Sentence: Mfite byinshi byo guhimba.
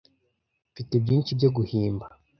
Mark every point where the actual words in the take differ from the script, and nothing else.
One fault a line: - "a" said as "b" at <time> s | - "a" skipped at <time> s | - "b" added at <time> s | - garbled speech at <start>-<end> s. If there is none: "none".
none